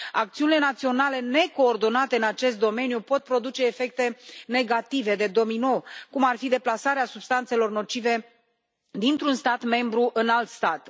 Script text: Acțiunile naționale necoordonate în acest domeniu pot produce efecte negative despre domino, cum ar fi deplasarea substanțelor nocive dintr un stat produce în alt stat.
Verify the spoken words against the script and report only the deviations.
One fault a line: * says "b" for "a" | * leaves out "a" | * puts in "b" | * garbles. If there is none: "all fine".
* says "de" for "despre"
* says "membru" for "produce"